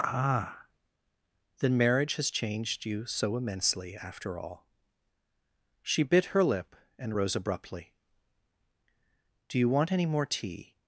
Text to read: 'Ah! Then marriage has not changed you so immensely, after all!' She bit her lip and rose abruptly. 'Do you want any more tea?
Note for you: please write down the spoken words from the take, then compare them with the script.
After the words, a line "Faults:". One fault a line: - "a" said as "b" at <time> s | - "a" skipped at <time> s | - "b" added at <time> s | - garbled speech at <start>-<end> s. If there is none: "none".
'Ah! Then marriage has changed you so immensely, after all!' She bit her lip and rose abruptly. 'Do you want any more tea?
Faults:
- "not" skipped at 2.3 s